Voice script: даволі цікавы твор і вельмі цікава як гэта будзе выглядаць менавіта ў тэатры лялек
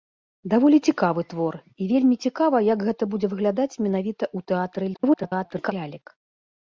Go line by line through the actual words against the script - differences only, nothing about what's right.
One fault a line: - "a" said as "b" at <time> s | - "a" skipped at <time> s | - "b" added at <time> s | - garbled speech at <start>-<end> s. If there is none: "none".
- garbled speech at 4.9-5.7 s